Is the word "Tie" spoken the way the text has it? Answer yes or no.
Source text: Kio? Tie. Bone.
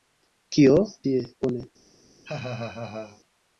yes